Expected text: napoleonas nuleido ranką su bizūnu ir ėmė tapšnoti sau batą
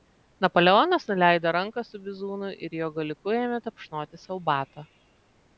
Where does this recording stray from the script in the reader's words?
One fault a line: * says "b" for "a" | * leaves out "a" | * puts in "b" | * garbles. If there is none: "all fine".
* puts in "jo galiuku"